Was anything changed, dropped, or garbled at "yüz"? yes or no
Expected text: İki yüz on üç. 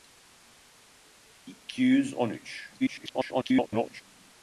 no